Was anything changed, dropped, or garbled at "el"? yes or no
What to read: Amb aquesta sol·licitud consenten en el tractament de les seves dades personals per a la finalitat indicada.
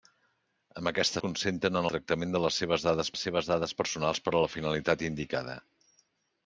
yes